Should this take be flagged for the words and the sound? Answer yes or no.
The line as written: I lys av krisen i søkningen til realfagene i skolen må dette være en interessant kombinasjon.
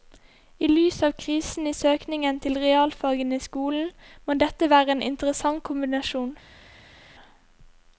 no